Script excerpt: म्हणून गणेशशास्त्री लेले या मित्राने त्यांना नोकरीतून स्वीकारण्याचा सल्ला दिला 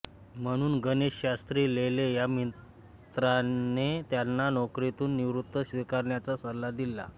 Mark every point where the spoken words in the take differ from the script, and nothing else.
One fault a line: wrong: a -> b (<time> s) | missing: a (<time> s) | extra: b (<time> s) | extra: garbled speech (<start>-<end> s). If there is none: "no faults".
extra: निवृत्ती (5.2 s)